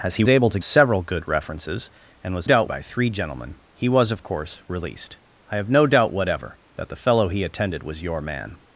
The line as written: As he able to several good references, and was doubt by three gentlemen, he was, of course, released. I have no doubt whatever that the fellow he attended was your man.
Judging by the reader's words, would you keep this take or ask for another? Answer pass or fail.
pass